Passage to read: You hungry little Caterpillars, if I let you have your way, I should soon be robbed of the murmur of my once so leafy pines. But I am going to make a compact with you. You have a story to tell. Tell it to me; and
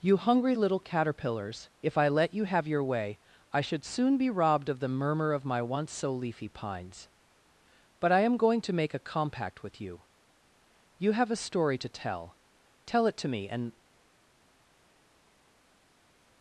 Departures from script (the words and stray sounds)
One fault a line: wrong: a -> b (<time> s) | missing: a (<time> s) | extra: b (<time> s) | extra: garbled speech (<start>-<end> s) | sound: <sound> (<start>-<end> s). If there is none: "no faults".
no faults